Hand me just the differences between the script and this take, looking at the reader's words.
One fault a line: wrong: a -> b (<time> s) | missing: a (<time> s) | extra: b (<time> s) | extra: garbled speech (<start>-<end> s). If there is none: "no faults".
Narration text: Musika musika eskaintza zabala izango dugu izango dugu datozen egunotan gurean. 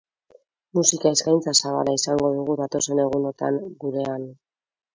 missing: musika (1.1 s)
missing: izango dugu (2.6 s)